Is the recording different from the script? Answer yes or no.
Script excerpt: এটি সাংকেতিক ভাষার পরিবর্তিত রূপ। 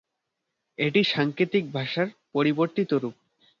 no